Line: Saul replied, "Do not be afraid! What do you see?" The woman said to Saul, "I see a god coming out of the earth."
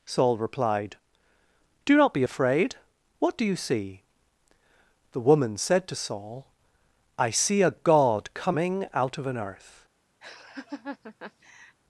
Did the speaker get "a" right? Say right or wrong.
right